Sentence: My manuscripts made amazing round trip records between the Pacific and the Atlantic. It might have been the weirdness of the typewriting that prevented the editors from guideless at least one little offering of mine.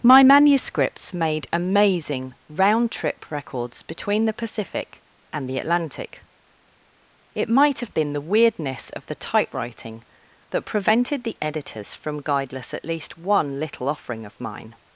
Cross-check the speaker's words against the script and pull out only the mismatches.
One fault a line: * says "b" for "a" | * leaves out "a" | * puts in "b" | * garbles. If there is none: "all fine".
all fine